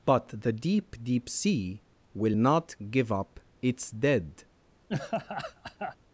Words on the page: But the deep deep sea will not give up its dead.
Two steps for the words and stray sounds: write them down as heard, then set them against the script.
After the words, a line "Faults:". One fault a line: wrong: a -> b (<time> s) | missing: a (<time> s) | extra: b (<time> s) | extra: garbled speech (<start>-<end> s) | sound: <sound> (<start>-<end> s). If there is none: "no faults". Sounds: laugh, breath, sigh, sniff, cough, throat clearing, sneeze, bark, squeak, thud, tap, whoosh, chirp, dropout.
But the deep deep sea will not give up its dead.
Faults:
sound: laugh (4.9-6.0 s)